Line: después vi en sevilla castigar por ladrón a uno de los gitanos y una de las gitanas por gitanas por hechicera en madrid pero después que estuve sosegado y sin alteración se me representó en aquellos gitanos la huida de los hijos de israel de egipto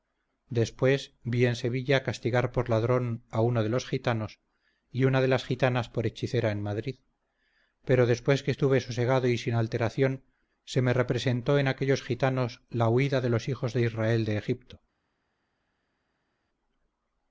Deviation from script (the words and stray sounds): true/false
true